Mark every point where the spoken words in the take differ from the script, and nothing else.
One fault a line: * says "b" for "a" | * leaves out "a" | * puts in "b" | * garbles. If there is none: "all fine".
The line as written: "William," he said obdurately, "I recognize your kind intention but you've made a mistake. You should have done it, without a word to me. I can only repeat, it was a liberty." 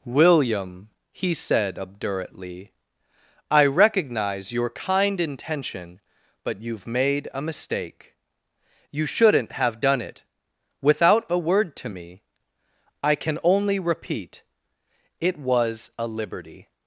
* says "shouldn't" for "should"